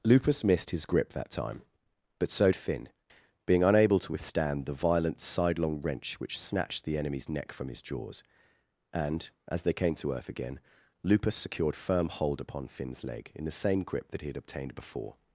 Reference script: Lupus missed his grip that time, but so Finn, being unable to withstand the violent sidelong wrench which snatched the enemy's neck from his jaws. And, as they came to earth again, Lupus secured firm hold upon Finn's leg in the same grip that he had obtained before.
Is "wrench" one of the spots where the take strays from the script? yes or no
no